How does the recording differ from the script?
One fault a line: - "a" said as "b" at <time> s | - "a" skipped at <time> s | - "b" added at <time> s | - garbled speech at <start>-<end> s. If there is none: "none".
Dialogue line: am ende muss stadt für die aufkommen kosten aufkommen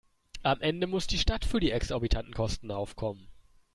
- "die" added at 1.1 s
- "aufkommen" said as "exorbitanten" at 1.7 s